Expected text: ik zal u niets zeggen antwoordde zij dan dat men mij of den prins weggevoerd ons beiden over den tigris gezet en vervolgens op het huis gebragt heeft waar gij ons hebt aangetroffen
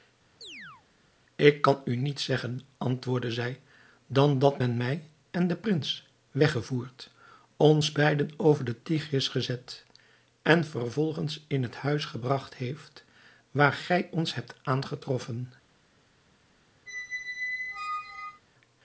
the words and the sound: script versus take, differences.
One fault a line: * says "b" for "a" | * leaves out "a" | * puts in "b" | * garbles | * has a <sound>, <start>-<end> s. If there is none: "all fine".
* has a chirp, 0.4-0.8 s
* says "kan" for "zal"
* says "en" for "of"
* says "in" for "op"
* has a squeak, 16.9-18.4 s